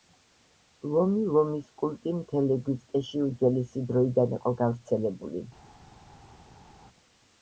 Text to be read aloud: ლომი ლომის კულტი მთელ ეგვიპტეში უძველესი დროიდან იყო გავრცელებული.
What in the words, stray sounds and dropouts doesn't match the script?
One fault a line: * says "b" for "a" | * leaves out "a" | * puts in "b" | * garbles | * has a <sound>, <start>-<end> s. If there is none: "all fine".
all fine